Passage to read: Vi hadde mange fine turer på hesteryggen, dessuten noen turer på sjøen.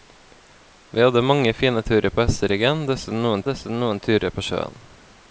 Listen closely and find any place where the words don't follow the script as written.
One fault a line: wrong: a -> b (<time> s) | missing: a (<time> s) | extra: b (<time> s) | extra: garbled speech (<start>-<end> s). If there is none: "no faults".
extra: dessuten noen (3.5 s)